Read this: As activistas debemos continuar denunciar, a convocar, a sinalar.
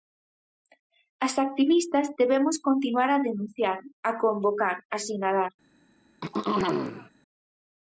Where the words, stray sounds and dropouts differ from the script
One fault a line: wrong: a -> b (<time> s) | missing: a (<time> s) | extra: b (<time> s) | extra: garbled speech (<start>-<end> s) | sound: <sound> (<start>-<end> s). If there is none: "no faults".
extra: a (3.1 s)
sound: throat clearing (6.2-7.1 s)